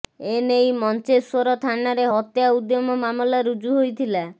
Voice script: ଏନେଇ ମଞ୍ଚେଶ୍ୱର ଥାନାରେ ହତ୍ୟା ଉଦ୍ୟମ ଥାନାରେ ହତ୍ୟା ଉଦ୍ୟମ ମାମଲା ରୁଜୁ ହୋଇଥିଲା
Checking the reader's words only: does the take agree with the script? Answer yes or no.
no